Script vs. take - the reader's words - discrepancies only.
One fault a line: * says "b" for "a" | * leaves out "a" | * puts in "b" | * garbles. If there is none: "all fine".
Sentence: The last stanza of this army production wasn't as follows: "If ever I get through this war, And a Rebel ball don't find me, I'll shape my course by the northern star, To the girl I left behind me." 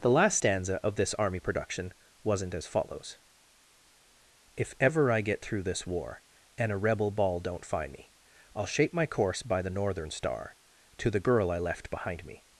all fine